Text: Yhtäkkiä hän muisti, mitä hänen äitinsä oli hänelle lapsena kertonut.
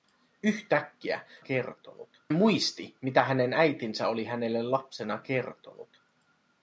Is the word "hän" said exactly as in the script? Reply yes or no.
no